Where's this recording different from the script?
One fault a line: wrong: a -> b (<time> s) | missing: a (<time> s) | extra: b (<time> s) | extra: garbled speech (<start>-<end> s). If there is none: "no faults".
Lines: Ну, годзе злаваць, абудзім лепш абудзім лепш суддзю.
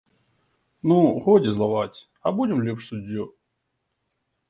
missing: абудзім лепш (2.8 s)